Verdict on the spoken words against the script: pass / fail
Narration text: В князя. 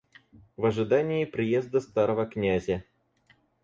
fail